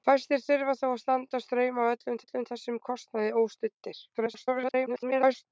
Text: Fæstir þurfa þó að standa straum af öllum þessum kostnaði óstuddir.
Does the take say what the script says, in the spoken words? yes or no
no